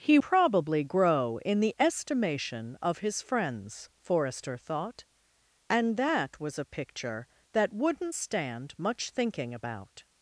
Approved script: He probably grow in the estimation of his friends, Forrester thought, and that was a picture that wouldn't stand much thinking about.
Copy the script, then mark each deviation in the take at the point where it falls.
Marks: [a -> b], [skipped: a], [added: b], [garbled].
He probably grow in the estimation of his friends, Forrester thought, and that was a picture that wouldn't stand much thinking about.